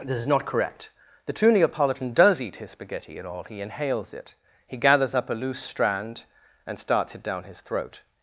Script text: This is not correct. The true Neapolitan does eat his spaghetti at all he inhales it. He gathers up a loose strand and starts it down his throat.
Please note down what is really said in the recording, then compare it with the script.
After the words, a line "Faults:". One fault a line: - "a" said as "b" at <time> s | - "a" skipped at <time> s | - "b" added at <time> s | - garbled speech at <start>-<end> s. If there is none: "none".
This is not correct. The true Neapolitan does eat his spaghetti at all he inhales it. He gathers up a loose strand and starts it down his throat.
Faults:
none